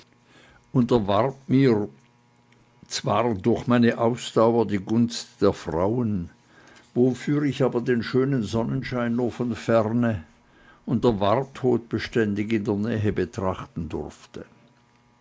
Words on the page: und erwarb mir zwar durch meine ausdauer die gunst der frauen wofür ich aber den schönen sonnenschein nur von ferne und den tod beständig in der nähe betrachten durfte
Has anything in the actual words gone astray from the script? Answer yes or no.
yes